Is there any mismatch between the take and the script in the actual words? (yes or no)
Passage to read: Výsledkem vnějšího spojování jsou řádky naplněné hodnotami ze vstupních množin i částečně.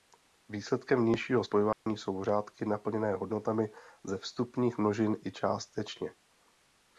no